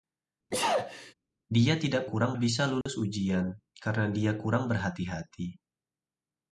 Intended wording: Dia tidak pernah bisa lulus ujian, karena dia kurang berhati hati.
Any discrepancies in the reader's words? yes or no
yes